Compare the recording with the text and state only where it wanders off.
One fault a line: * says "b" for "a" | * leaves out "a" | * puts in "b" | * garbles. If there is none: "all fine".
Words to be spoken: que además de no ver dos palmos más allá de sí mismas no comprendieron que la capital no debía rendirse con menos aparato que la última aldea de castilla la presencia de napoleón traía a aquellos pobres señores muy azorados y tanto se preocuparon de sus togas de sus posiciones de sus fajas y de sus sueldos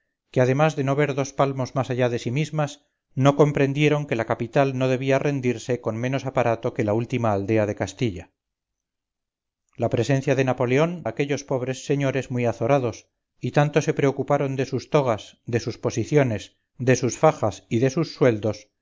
* leaves out "traía"